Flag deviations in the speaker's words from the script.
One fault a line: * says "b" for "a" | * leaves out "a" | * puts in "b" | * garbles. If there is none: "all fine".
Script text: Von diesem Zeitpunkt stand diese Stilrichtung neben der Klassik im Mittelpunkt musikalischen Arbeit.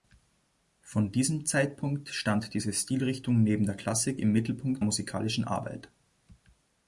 all fine